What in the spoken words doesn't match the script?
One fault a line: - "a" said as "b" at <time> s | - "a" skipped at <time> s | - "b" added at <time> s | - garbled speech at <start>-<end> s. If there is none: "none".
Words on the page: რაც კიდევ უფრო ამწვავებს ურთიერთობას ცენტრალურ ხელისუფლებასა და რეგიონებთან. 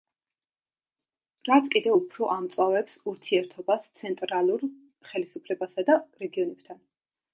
none